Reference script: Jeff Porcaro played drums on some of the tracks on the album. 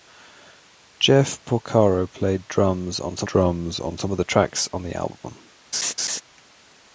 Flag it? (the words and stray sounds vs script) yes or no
yes